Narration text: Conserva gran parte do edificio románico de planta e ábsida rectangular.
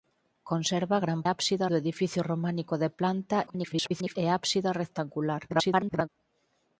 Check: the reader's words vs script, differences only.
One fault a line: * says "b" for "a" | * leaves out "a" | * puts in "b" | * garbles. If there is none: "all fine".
* says "ábsida" for "parte"
* garbles
* garbles